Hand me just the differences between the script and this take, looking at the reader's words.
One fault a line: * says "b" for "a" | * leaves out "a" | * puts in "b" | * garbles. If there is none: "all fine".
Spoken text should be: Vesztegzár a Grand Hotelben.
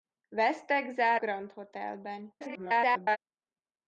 * leaves out "a"
* garbles